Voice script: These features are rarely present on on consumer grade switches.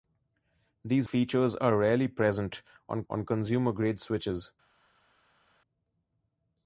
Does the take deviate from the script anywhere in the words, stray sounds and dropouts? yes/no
no